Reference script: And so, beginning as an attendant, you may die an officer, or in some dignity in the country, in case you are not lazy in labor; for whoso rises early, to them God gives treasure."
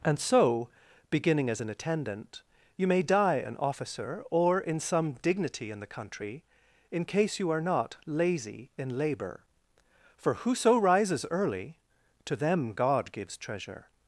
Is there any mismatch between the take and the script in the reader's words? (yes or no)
no